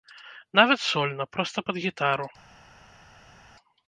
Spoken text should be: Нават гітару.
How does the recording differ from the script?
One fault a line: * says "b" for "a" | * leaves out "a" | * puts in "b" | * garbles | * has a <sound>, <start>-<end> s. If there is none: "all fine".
* puts in "сольна проста пад"